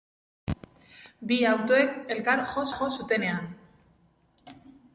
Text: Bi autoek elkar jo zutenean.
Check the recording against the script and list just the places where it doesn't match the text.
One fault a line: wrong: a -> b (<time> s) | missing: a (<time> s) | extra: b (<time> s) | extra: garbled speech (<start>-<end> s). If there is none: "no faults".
extra: jo (2.8 s)